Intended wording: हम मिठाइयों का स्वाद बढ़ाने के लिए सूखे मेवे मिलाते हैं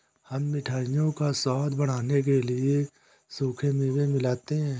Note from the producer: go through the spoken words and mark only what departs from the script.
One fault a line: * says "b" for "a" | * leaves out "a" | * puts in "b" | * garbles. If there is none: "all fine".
all fine